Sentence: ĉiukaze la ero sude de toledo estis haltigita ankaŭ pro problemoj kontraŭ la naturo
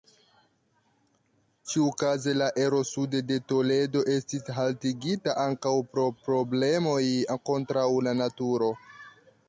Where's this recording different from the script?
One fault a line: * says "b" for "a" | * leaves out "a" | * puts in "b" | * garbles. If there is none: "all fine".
all fine